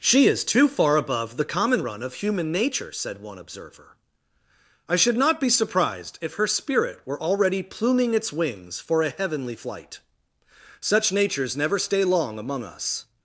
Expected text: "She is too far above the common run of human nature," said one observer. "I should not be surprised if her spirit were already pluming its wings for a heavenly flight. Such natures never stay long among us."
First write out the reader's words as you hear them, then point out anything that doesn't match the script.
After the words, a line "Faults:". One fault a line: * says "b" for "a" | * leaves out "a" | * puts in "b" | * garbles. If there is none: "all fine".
"She is too far above the common run of human nature," said one observer. "I should not be surprised if her spirit were already pluming its wings for a heavenly flight. Such natures never stay long among us."
Faults:
all fine